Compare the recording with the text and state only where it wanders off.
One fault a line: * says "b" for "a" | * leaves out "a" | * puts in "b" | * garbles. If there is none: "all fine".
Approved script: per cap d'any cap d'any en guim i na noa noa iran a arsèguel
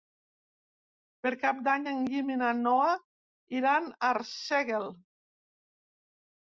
* leaves out "cap d'any"
* leaves out "noa"